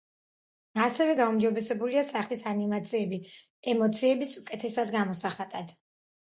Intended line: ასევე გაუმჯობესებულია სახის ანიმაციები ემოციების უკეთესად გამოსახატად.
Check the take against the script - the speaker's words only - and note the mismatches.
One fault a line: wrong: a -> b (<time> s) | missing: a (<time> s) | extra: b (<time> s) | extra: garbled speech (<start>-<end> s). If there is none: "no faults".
no faults